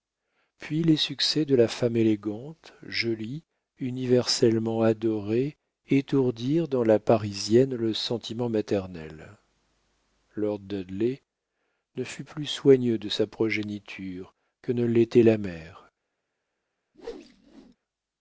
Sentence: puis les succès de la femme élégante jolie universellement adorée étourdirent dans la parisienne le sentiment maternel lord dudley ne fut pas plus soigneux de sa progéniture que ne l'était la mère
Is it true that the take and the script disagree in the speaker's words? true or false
true